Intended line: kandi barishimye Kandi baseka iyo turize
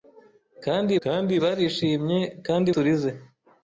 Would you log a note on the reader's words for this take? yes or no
yes